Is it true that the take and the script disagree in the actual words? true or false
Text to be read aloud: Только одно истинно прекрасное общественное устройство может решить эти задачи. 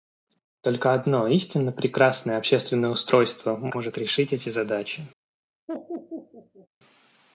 false